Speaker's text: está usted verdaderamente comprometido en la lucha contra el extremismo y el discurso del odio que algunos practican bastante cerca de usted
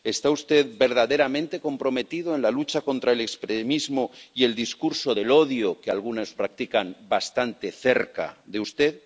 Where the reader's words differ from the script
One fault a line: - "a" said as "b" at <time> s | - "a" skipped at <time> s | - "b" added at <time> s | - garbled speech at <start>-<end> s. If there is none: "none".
none